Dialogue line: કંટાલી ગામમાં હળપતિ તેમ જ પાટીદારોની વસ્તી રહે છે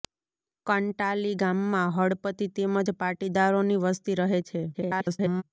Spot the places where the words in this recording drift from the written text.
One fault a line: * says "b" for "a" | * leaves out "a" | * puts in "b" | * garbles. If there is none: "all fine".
* garbles